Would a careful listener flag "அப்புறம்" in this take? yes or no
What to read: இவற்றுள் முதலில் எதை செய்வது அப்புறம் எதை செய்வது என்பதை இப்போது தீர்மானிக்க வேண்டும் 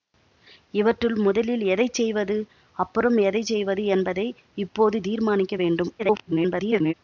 no